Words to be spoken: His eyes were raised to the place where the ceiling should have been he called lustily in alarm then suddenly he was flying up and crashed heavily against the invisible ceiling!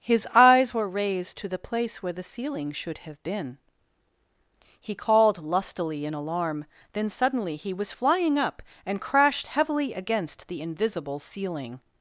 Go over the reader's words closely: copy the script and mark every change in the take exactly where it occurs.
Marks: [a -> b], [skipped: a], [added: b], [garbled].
His eyes were raised to the place where the ceiling should have been he called lustily in alarm then suddenly he was flying up and crashed heavily against the invisible ceiling!